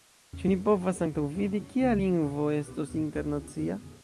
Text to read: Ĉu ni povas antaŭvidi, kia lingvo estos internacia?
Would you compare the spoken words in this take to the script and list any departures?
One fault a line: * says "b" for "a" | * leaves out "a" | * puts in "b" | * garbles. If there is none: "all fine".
all fine